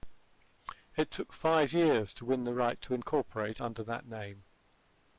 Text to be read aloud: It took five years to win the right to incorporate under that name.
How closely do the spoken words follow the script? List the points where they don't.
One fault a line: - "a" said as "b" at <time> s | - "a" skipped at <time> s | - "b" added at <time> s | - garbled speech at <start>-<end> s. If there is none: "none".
none